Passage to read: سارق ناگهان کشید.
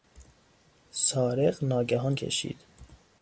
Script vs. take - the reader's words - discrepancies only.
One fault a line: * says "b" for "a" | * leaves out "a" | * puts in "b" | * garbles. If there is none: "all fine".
all fine